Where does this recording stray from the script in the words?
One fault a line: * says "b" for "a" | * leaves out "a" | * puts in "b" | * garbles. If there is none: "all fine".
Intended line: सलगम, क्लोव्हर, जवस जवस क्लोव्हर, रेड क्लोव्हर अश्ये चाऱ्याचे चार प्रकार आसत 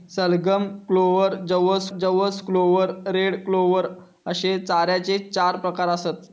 all fine